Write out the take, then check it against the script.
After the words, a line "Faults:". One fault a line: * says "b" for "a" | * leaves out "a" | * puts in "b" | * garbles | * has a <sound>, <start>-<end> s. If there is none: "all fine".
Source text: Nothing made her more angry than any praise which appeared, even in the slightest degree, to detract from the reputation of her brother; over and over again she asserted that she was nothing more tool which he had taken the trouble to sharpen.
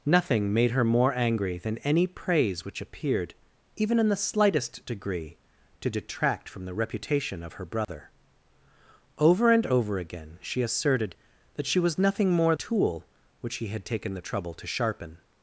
Nothing made her more angry than any praise which appeared, even in the slightest degree, to detract from the reputation of her brother; over and over again she asserted that she was nothing more tool which he had taken the trouble to sharpen.
Faults:
* has a dropout, 7.8-7.9 s